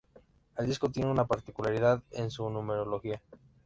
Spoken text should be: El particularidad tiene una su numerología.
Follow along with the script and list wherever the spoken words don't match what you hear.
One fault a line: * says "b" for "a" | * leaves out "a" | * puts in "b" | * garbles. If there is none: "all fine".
* says "disco" for "particularidad"
* puts in "particularidad en"